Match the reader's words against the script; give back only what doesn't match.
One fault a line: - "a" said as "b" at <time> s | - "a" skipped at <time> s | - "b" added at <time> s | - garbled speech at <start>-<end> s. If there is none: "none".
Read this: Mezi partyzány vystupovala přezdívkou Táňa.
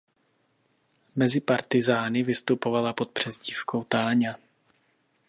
- "pod" added at 2.9 s